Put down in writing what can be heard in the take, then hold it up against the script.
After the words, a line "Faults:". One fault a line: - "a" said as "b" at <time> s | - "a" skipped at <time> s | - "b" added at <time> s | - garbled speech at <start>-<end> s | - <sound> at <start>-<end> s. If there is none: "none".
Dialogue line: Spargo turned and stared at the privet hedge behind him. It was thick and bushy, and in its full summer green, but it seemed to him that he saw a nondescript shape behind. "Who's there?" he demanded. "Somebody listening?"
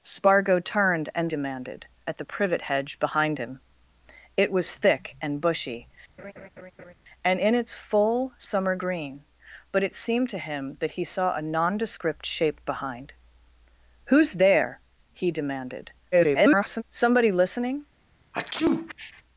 Spargo turned and demanded at the privet hedge behind him. It was thick and bushy, and in its full summer green, but it seemed to him that he saw a nondescript shape behind. "Who's there?" he demanded. [garbled] "Somebody listening?"
Faults:
- "stared" said as "demanded" at 1.3 s
- laugh at 6.2-6.9 s
- garbled speech at 16.1-16.8 s
- sneeze at 18.3-19.2 s